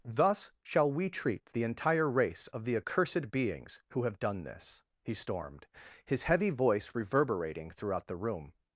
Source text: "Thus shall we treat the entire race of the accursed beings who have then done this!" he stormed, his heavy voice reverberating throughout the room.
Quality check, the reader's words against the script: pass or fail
fail